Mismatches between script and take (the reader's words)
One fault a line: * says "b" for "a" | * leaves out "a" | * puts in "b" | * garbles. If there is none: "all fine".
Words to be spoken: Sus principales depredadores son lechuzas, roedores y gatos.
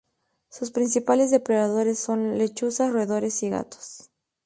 all fine